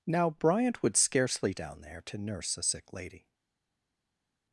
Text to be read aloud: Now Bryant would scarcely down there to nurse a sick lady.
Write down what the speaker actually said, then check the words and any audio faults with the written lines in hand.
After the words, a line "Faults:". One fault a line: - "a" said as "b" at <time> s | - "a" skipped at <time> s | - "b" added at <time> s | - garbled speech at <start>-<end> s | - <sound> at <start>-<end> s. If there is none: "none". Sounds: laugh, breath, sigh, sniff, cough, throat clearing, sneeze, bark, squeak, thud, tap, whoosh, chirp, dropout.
Now Bryant would scarcely down there to nurse a sick lady.
Faults:
none